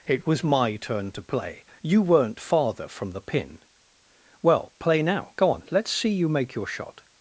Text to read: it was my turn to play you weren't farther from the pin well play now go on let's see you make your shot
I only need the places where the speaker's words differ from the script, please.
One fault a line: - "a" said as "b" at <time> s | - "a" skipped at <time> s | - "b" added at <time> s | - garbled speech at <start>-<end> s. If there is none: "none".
none